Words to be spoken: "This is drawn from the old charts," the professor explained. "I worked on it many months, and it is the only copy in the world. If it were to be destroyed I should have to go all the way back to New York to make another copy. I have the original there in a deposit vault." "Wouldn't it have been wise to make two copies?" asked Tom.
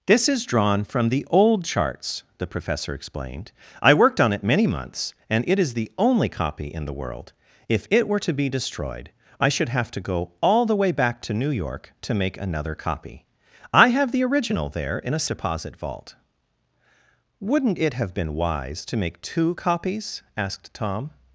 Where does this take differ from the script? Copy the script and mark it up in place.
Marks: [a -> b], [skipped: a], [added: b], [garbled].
"This is drawn from the old charts," the professor explained. "I worked on it many months, and it is the only copy in the world. If it were to be destroyed I should have to go all the way back to New York to make another copy. I have the original there in a deposit vault." "Wouldn't it have been wise to make two copies?" asked Tom.